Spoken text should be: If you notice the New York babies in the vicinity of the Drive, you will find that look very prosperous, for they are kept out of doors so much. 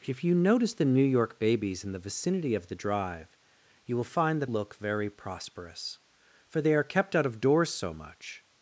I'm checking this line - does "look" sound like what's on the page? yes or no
yes